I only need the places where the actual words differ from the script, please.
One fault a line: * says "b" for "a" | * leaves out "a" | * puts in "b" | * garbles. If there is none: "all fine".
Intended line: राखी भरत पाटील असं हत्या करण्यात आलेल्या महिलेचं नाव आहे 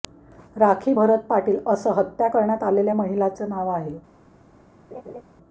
all fine